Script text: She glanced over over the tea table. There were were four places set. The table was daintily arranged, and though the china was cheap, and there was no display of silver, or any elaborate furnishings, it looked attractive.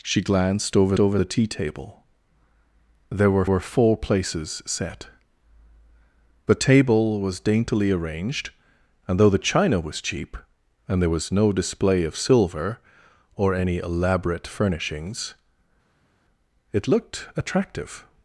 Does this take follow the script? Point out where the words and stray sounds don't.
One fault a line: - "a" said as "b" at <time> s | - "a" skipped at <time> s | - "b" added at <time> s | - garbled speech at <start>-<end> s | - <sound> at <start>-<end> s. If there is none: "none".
none